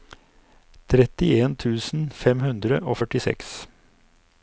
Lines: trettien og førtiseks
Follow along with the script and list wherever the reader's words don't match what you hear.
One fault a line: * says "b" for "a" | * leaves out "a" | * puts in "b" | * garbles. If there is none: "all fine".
* puts in "tusen fem hundre"